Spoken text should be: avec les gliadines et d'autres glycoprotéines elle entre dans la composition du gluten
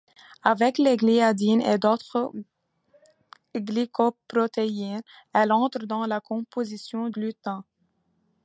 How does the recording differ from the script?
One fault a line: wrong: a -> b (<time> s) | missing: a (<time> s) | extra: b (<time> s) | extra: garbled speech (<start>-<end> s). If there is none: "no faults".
missing: du (7.1 s)